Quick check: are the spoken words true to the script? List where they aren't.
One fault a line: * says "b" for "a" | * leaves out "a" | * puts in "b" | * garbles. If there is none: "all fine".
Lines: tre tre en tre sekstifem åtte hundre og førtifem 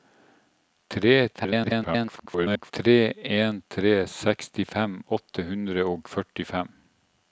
* garbles